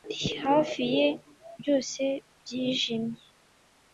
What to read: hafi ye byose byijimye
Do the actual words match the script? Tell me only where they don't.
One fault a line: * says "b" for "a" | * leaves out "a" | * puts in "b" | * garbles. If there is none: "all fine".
all fine